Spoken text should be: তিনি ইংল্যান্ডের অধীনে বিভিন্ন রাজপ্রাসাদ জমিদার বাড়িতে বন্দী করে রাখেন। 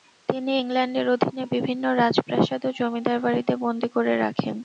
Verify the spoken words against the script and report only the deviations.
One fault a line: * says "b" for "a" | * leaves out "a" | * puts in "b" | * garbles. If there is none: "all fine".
* puts in "ও"